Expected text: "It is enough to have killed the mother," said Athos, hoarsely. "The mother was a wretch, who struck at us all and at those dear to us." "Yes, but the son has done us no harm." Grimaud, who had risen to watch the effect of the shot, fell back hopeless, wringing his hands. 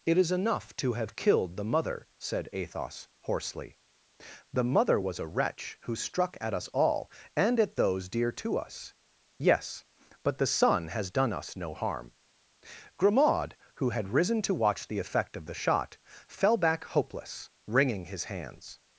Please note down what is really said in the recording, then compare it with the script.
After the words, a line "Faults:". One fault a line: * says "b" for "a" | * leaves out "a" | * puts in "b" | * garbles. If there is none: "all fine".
"It is enough to have killed the mother," said Athos, hoarsely. "The mother was a wretch, who struck at us all and at those dear to us." "Yes, but the son has done us no harm." Grimaud, who had risen to watch the effect of the shot, fell back hopeless, wringing his hands.
Faults:
all fine